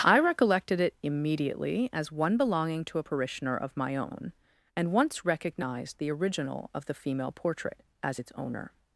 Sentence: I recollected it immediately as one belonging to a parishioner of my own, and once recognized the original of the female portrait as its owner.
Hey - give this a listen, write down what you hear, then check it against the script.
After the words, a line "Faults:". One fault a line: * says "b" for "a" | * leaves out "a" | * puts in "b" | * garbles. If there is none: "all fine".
I recollected it immediately as one belonging to a parishioner of my own, and once recognized the original of the female portrait as its owner.
Faults:
all fine